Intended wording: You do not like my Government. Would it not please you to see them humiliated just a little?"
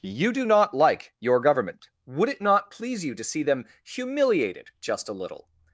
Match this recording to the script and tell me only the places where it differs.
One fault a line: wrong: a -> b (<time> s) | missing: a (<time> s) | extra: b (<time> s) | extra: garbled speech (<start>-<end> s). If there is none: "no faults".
wrong: my -> your (1.2 s)